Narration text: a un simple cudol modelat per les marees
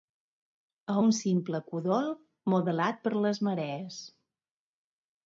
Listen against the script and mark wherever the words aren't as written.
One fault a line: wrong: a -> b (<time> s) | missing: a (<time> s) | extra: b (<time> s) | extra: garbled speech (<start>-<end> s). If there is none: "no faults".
no faults